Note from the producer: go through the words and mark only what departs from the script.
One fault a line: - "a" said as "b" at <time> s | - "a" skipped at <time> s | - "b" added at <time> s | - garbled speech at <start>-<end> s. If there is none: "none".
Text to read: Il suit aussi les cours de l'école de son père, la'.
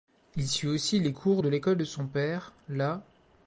none